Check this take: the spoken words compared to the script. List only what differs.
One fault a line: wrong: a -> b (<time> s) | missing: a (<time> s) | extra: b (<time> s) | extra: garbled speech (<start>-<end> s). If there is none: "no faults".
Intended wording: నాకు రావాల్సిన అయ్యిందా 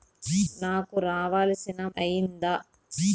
no faults